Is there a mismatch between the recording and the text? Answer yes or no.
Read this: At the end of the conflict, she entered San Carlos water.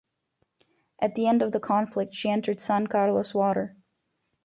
no